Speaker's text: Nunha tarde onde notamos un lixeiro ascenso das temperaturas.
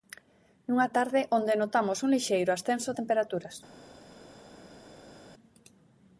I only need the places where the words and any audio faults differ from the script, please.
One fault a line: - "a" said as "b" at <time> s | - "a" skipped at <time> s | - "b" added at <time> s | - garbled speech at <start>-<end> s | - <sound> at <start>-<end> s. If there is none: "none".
- "das" skipped at 2.9 s